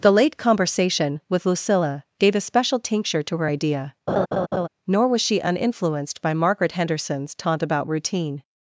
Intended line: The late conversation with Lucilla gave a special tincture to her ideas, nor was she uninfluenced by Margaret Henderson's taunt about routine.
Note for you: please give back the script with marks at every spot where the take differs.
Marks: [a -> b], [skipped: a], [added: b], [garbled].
The late conversation with Lucilla gave a special tincture to her [ideas, -> idea] nor was she uninfluenced by Margaret Henderson's taunt about routine.